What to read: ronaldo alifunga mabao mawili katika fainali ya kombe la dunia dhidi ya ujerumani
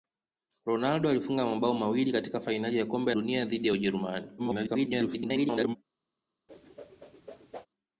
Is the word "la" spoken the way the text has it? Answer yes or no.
no